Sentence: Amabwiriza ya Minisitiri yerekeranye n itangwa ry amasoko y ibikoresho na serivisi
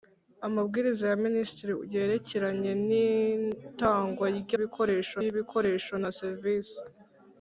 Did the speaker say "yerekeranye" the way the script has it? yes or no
yes